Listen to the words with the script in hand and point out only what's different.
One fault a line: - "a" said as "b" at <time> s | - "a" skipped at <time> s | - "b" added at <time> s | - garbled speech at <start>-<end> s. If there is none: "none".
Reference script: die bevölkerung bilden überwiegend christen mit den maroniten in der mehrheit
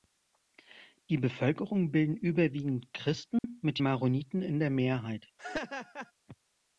- "den" skipped at 3.8 s